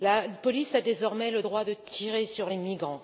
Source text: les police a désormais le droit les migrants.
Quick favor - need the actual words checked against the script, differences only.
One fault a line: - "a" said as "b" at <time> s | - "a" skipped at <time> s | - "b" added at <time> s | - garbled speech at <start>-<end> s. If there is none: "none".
- "les" said as "la" at 0.0 s
- "de tirer sur" added at 1.6 s